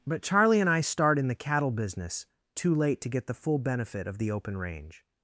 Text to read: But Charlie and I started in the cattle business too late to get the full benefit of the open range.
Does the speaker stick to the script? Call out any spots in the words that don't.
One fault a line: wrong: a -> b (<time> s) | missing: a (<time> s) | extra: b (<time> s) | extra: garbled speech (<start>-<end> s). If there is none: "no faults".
wrong: started -> start (0.8 s)